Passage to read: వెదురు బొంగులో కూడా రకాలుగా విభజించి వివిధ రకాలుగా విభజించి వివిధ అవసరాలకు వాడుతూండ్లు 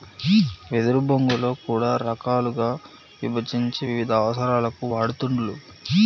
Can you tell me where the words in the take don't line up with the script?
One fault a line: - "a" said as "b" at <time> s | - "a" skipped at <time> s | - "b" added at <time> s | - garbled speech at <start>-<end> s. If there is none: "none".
- "రకాలుగా విభజించి వివిధ" skipped at 4.1 s